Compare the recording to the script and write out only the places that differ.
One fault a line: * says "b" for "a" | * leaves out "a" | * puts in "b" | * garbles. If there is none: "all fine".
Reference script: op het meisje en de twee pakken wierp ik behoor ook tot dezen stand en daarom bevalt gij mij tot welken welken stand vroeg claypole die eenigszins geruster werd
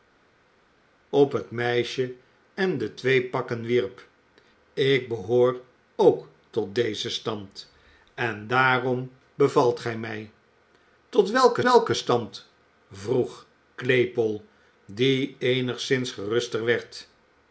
all fine